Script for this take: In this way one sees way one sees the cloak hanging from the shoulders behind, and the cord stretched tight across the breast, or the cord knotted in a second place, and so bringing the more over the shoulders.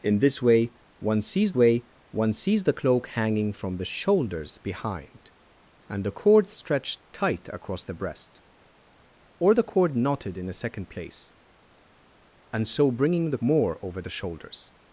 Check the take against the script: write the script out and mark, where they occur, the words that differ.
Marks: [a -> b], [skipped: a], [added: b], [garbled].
In this way one sees way one sees the cloak hanging from the shoulders behind, and the cord stretched tight across the breast, or the cord knotted in a second place, and so bringing the more over the shoulders.